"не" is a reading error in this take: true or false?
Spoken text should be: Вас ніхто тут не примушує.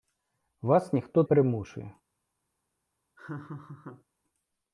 true